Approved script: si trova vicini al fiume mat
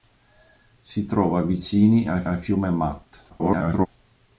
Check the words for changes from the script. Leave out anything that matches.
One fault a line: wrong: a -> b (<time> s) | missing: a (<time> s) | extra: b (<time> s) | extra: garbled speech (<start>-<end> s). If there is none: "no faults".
extra: al (2.2 s)
extra: garbled speech (3.3-3.9 s)